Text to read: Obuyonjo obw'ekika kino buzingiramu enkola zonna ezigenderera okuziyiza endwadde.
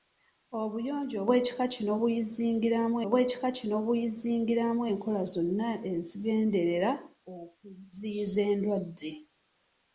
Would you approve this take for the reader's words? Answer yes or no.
no